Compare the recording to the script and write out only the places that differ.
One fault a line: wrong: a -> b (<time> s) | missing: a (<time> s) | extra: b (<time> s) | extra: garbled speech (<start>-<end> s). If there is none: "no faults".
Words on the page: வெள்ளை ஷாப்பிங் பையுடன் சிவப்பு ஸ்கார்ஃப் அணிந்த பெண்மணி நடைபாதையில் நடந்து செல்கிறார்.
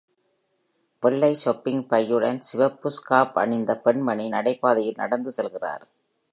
no faults